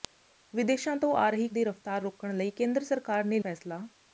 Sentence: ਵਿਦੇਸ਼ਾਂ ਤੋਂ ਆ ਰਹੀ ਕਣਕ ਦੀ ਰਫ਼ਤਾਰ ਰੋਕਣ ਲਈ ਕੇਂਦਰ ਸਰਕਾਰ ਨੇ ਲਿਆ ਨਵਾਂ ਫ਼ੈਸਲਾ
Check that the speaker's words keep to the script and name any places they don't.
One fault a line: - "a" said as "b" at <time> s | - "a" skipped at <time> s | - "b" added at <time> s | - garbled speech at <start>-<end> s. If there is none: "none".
- "ਕਣਕ" skipped at 1.5 s
- "ਲਿਆ ਨਵਾਂ" skipped at 3.4 s